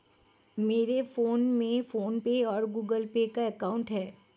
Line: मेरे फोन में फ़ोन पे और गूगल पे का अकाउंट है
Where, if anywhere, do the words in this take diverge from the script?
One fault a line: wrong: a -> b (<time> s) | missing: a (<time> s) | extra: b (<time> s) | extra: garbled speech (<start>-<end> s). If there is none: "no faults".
no faults